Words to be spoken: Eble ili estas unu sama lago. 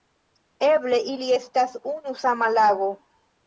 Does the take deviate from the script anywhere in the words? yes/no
no